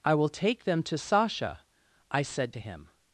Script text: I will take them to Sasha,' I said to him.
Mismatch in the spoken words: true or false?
false